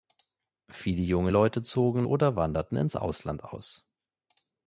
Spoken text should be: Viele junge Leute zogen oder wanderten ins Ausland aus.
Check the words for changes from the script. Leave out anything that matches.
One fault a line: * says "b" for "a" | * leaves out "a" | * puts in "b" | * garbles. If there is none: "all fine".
all fine